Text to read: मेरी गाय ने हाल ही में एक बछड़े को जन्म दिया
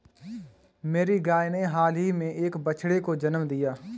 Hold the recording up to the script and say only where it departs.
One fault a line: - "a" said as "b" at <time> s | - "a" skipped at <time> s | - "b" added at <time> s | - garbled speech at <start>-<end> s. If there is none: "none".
none